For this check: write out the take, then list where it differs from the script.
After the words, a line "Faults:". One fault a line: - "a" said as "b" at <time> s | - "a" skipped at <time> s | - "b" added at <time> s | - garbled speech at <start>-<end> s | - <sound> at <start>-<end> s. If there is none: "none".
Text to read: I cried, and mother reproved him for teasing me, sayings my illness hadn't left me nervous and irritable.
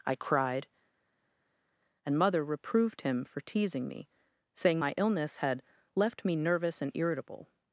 I cried, and mother reproved him for teasing me, saying my illness had left me nervous and irritable.
Faults:
- "sayings" said as "saying" at 4.5 s
- "hadn't" said as "had" at 5.4 s